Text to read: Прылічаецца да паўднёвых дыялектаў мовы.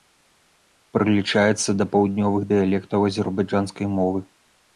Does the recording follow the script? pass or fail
fail